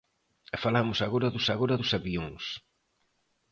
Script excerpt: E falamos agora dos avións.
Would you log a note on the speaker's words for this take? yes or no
yes